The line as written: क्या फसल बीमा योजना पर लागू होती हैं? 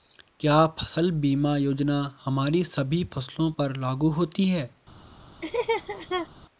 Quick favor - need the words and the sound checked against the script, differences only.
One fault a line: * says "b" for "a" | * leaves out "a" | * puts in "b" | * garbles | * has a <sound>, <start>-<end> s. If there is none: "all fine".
* puts in "हमारी सभी फसलों"
* has a laugh, 5.4-6.3 s